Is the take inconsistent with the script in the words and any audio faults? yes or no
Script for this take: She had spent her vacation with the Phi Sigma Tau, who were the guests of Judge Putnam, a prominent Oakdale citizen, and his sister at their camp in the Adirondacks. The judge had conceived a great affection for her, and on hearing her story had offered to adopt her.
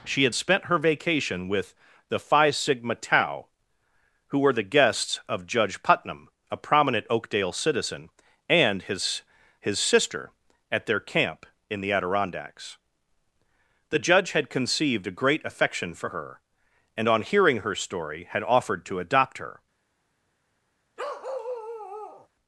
yes